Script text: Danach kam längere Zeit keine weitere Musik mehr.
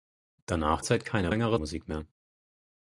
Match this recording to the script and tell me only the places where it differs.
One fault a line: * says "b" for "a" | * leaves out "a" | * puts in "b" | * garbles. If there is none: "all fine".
* leaves out "kam längere"
* says "längere" for "weitere"